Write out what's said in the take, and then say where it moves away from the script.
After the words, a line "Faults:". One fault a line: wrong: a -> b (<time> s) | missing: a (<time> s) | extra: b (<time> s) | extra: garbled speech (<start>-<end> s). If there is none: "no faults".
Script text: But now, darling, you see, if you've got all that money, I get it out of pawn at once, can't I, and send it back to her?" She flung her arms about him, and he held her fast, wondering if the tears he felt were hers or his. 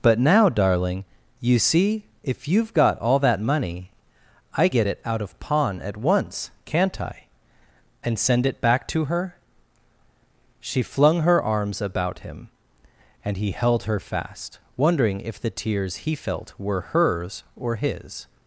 But now, darling, you see, if you've got all that money, I get it out of pawn at once, can't I, and send it back to her?" She flung her arms about him, and he held her fast, wondering if the tears he felt were hers or his.
Faults:
no faults